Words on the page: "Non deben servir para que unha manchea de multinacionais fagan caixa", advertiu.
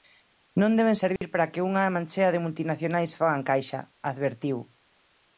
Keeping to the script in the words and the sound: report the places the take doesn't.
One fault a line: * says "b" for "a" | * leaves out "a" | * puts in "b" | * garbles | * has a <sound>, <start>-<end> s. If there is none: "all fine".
* has a dropout, 1.2-1.2 s